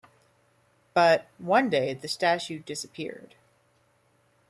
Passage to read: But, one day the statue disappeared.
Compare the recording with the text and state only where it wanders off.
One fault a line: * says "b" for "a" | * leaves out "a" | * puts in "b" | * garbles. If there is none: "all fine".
all fine